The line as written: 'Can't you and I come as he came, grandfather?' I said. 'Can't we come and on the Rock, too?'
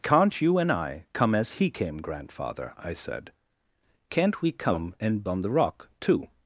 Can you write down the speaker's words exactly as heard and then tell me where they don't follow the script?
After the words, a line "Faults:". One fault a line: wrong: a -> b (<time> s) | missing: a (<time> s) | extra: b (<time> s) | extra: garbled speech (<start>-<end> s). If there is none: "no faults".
'Can't you and I come as he came, grandfather?' I said. 'Can't we come and on the Rock, too?'
Faults:
no faults